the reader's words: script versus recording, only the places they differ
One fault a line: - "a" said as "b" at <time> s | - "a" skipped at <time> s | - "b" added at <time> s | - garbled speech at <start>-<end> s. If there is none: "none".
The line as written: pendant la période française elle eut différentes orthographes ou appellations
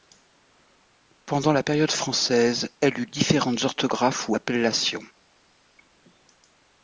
none